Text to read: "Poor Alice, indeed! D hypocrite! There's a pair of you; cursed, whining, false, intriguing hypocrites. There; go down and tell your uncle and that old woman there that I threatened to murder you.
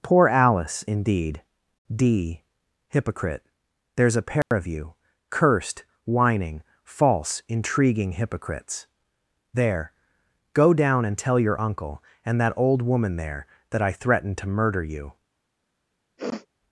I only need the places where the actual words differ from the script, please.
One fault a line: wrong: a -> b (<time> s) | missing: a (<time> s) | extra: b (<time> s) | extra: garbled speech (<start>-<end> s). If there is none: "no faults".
no faults